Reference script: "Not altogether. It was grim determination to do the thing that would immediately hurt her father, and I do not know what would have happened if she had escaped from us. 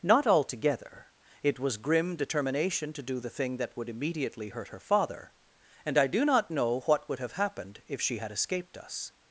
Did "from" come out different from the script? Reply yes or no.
yes